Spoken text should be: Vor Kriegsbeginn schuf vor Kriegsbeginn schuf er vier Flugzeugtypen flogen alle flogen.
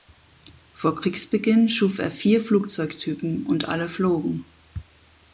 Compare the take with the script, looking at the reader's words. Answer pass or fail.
fail